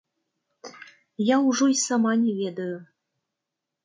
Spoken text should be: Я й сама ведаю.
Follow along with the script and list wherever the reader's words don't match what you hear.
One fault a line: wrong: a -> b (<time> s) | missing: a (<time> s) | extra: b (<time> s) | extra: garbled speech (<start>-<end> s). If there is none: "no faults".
extra: ўжо (1.5 s)
extra: не (2.2 s)